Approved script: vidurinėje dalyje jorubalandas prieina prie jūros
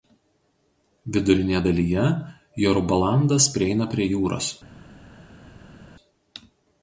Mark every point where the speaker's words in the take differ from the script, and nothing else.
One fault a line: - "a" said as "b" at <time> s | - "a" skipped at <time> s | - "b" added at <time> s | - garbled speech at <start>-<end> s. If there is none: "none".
none